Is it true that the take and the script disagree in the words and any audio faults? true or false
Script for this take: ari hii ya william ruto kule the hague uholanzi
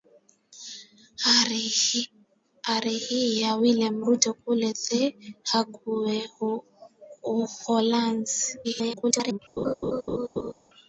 true